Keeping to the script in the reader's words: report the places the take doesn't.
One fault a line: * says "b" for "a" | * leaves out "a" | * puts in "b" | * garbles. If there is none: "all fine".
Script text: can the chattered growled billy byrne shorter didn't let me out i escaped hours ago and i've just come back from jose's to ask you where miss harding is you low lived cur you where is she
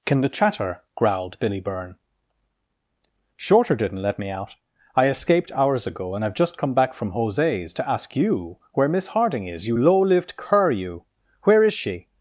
* says "chatter" for "chattered"